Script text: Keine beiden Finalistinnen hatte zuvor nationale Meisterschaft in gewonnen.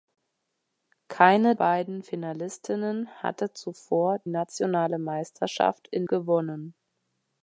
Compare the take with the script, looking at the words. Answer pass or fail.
pass